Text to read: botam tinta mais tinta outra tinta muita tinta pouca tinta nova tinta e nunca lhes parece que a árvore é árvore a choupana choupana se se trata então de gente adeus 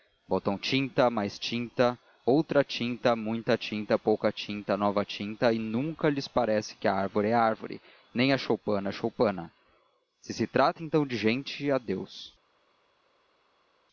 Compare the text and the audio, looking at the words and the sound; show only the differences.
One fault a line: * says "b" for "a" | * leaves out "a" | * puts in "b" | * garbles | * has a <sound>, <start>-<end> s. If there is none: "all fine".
* puts in "nem"